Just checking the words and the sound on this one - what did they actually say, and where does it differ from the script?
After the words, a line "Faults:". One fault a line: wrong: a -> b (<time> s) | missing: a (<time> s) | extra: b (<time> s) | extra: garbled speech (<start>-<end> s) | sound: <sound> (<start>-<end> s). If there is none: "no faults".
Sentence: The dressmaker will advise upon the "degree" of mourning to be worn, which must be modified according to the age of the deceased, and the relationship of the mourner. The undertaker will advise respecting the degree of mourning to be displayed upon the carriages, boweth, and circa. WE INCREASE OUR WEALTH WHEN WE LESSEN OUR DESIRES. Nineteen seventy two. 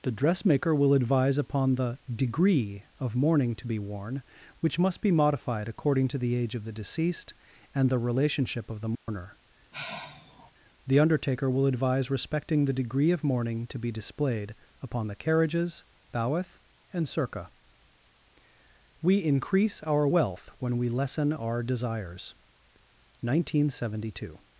The dressmaker will advise upon the "degree" of mourning to be worn, which must be modified according to the age of the deceased, and the relationship of the mourner. The undertaker will advise respecting the degree of mourning to be displayed upon the carriages, boweth, and circa. WE INCREASE OUR WEALTH WHEN WE LESSEN OUR DESIRES. Nineteen seventy two.
Faults:
sound: dropout (9.0-9.1 s)
sound: sigh (9.7-10.5 s)